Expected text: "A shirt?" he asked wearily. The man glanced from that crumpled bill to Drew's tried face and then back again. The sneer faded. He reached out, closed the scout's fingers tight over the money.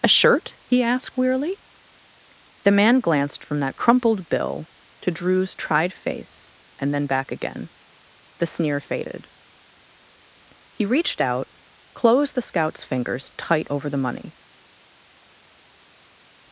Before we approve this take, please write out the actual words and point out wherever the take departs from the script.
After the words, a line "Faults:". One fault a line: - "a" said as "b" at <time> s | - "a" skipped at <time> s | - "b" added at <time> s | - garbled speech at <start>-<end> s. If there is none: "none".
"A shirt?" he asked wearily. The man glanced from that crumpled bill to Drew's tried face and then back again. The sneer faded. He reached out, closed the scout's fingers tight over the money.
Faults:
none